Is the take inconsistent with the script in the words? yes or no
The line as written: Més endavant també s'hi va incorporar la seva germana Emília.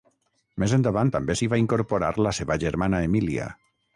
no